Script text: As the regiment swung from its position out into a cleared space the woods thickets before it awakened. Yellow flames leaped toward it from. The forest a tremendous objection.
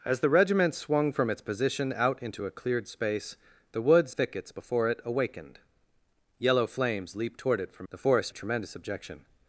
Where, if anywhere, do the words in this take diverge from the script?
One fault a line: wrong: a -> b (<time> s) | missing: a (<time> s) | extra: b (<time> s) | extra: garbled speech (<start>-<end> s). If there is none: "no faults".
no faults